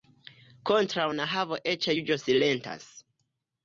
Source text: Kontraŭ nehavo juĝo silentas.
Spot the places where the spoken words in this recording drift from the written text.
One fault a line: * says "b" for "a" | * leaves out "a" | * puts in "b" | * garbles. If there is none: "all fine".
* puts in "eĉ"